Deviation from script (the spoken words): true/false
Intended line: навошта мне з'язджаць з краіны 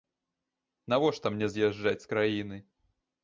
false